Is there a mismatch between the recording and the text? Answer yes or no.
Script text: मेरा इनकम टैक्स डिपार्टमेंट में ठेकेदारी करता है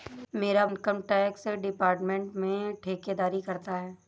no